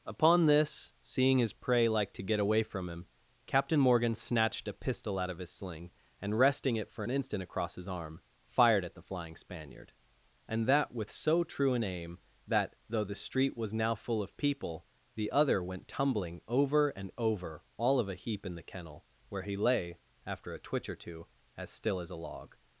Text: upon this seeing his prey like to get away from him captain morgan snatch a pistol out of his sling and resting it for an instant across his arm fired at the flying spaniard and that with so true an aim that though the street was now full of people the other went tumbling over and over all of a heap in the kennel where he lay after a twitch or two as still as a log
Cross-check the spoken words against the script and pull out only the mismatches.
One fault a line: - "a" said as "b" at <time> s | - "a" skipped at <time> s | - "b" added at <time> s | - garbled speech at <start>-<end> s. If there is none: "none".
- "snatch" said as "snatched" at 4.2 s